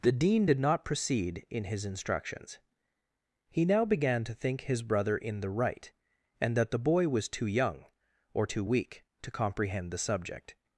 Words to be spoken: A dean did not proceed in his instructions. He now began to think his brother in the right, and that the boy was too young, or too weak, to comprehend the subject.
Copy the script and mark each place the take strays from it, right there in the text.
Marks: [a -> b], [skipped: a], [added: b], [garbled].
[A -> The] dean did not proceed in his instructions. He now began to think his brother in the right, and that the boy was too young, or too weak, to comprehend the subject.